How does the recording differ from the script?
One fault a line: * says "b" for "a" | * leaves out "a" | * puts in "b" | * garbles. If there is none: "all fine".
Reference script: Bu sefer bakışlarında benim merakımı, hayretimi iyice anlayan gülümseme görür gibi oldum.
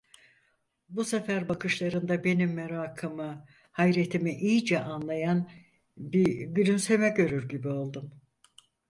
* puts in "bir"